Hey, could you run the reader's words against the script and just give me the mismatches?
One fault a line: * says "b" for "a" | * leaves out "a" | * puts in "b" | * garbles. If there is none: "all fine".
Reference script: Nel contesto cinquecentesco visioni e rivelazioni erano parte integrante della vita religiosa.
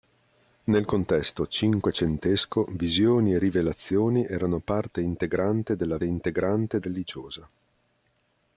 * says "integrante" for "vita"